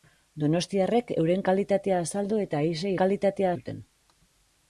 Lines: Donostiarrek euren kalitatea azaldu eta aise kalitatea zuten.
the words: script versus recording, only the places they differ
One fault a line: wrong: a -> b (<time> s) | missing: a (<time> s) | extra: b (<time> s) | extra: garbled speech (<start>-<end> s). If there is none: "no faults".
no faults